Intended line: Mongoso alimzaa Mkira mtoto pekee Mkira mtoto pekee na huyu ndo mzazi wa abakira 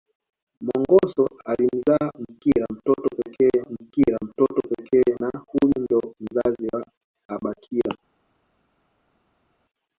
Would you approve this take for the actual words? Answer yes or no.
yes